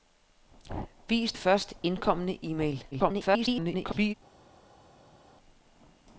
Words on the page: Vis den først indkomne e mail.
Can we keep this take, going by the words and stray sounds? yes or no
no